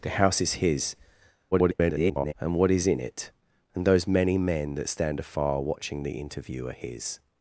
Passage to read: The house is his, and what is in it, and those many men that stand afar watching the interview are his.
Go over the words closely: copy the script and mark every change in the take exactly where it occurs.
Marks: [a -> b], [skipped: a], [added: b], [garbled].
The house is his, [garbled] and what is in it, and those many men that stand afar watching the interview are his.